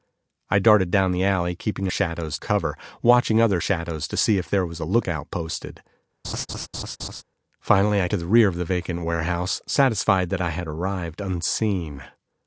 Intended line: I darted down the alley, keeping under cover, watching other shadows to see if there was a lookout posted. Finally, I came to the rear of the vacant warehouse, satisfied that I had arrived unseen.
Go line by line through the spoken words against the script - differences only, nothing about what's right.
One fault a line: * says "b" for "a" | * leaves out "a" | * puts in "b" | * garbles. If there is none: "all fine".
* says "shadows" for "under"
* leaves out "came"